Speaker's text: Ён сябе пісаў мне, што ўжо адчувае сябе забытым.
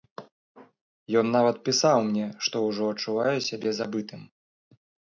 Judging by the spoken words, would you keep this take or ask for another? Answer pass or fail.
fail